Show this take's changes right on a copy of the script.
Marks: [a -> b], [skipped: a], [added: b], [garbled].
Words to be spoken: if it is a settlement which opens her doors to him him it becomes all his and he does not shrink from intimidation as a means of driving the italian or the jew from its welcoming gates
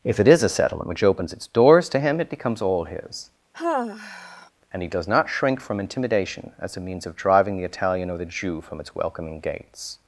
if it is a settlement which opens [her -> its] doors to him [skipped: him] it becomes all his and he does not shrink from intimidation as a means of driving the italian or the jew from its welcoming gates